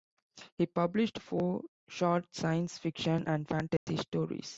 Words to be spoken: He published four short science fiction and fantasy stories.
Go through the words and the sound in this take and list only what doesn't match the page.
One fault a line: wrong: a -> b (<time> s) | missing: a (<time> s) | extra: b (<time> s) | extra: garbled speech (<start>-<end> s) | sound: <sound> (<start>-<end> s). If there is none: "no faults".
sound: dropout (3.8-3.9 s)